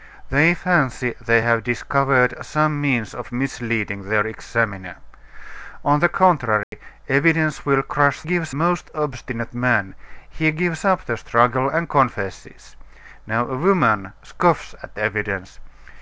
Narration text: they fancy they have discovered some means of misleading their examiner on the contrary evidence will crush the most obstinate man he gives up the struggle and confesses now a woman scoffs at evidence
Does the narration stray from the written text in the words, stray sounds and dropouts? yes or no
yes